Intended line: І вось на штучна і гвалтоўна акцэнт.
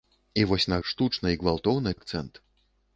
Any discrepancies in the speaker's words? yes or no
no